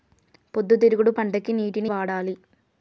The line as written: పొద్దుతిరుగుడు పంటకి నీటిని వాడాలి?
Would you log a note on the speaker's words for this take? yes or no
no